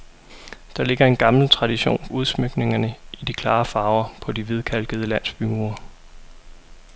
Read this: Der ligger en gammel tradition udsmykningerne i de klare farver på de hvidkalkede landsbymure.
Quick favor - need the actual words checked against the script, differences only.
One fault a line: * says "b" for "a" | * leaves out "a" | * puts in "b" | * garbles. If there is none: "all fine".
all fine